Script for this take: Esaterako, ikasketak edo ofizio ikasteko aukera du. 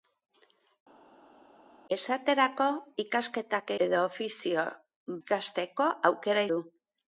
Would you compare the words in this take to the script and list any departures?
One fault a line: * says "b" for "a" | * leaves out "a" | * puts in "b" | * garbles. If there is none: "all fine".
all fine